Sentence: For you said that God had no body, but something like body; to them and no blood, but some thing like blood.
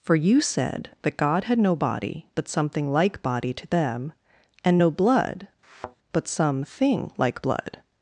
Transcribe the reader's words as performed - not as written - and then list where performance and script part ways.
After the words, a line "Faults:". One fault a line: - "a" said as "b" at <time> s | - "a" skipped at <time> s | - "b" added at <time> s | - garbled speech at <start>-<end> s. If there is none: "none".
For you said that God had no body, but something like body; to them and no blood, but some thing like blood.
Faults:
none